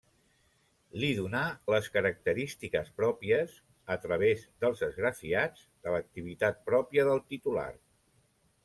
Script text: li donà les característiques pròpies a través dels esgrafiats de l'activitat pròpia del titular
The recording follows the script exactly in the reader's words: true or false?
true